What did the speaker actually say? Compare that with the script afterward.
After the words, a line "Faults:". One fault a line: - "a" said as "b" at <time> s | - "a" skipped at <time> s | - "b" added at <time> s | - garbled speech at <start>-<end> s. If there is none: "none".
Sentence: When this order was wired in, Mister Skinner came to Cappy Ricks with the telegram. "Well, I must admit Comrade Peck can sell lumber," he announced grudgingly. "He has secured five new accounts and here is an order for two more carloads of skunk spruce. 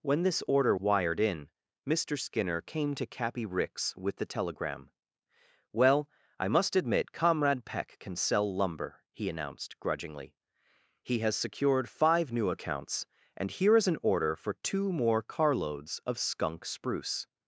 When this order wired in, Mister Skinner came to Cappy Ricks with the telegram. "Well, I must admit Comrade Peck can sell lumber," he announced grudgingly. "He has secured five new accounts and here is an order for two more carloads of skunk spruce.
Faults:
- "was" skipped at 0.8 s